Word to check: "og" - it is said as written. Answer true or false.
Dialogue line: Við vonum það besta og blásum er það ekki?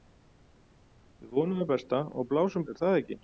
true